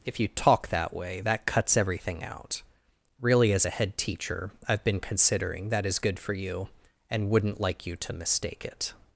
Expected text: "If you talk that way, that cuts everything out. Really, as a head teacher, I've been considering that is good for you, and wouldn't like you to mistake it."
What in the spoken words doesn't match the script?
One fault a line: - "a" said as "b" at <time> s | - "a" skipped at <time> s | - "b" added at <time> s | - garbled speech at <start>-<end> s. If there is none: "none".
none